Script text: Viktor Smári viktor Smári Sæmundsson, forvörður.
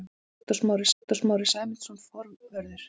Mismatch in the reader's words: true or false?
false